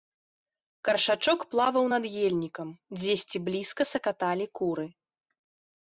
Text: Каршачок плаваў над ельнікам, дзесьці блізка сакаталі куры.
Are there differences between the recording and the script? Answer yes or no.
no